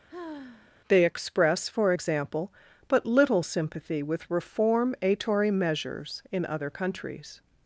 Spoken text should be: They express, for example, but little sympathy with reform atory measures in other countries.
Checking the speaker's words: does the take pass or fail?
pass